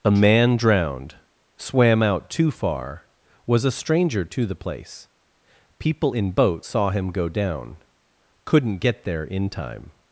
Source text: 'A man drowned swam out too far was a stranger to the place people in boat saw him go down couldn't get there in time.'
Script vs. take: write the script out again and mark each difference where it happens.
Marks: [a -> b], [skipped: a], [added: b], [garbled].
'A man drowned swam out too far was a stranger to the place people in boat saw him go down couldn't get there in time.'